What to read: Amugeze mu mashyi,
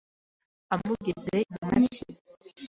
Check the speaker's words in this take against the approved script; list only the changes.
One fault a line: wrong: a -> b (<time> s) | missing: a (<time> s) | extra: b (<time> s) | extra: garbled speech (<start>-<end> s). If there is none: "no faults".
no faults